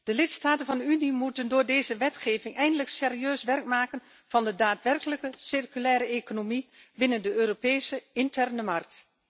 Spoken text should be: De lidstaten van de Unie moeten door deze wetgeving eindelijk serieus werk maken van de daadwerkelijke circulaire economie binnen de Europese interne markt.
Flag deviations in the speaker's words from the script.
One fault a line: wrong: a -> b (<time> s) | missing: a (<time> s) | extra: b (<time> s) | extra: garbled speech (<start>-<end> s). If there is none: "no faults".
no faults